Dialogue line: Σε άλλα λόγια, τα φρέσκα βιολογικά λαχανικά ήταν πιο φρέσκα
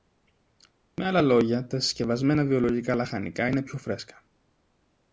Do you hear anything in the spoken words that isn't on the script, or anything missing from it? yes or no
yes